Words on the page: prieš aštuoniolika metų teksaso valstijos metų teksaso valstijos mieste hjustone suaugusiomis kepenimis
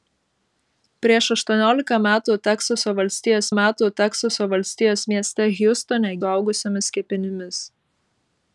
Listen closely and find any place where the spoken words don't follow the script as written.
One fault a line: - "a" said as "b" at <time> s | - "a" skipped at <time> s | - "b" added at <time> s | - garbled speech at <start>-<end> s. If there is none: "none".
none